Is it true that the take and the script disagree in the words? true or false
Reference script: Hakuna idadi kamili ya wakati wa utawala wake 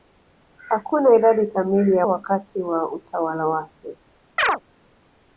false